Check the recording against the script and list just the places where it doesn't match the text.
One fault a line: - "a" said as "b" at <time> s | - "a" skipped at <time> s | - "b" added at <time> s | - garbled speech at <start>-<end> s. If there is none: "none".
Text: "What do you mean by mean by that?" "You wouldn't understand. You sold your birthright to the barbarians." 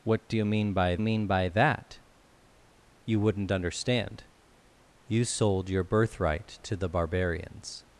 none